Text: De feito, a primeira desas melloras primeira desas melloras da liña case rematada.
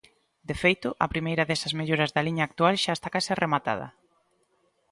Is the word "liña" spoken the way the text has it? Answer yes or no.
no